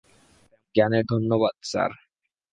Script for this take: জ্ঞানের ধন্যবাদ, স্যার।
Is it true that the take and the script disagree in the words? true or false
false